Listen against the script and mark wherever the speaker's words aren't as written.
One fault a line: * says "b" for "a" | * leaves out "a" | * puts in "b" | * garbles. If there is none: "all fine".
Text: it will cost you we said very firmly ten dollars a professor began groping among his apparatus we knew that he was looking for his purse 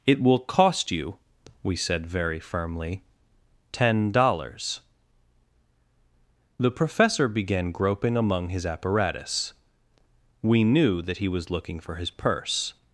* says "the" for "a"